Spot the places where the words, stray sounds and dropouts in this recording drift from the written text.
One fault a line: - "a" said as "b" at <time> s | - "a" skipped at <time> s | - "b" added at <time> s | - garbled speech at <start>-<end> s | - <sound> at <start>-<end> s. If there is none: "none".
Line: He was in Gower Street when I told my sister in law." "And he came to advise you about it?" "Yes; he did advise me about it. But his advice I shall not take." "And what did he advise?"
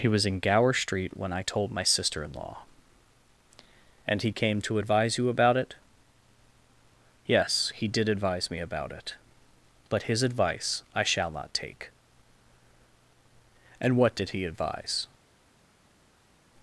none